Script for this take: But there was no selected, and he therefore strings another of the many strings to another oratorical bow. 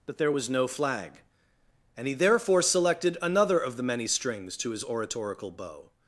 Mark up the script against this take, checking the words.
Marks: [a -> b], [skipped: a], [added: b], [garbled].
But there was no [selected, -> flag] and he therefore [strings -> selected] another of the many strings to [another -> his] oratorical bow.